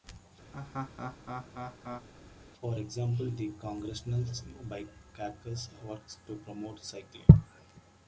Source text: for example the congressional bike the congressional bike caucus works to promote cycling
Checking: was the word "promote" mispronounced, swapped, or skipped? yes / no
no